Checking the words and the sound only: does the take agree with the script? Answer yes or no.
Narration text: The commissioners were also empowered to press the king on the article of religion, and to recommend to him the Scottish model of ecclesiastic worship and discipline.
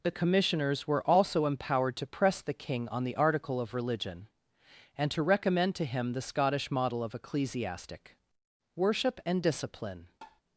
no